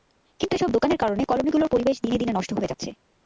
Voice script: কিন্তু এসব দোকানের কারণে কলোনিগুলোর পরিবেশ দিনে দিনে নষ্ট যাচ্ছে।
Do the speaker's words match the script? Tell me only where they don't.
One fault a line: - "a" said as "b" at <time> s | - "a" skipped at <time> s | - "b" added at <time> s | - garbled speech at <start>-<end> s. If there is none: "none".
- "হয়ে" added at 2.5 s